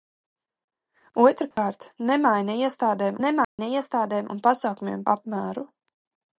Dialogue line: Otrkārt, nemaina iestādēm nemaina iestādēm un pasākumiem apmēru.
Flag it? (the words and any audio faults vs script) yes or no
yes